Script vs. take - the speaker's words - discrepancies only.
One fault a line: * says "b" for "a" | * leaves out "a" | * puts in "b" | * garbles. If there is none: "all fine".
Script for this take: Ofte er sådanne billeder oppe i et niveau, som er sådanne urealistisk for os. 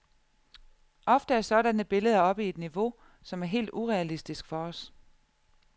* says "helt" for "sådanne"